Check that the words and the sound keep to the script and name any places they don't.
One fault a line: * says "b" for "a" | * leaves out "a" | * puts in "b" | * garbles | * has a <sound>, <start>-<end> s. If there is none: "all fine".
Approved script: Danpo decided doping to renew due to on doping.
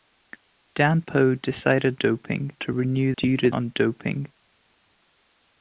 all fine